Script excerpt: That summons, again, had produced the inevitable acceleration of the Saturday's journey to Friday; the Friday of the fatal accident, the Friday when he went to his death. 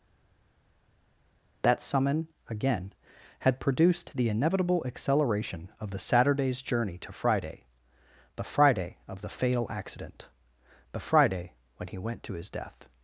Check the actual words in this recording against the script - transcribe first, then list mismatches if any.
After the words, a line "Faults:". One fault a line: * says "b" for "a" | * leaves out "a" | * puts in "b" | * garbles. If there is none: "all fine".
That summon, again, had produced the inevitable acceleration of the Saturday's journey to Friday; the Friday of the fatal accident, the Friday when he went to his death.
Faults:
* says "summon" for "summons"